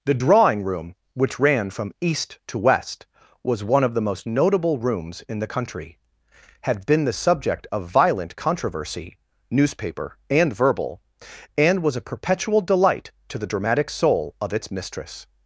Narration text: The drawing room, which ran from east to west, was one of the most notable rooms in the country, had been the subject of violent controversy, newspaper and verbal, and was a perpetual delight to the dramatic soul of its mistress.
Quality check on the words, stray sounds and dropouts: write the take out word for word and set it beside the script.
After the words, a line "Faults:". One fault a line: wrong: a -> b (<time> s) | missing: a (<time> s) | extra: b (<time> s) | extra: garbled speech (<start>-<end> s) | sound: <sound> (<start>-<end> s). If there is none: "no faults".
The drawing room, which ran from east to west, was one of the most notable rooms in the country, had been the subject of violent controversy, newspaper and verbal, and was a perpetual delight to the dramatic soul of its mistress.
Faults:
no faults